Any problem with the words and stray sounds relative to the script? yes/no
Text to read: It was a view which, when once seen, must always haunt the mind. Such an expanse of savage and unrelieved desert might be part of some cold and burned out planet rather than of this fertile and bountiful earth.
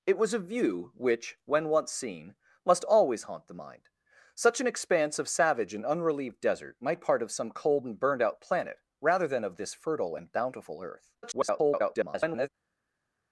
yes